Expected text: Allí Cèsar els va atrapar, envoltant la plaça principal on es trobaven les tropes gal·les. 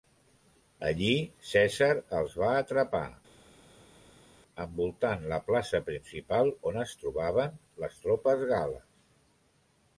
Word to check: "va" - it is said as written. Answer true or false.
true